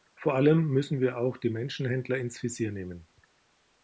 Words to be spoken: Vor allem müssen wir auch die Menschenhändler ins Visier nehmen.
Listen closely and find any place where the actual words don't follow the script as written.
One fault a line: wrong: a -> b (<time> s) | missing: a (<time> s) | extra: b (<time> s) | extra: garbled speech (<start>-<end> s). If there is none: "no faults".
no faults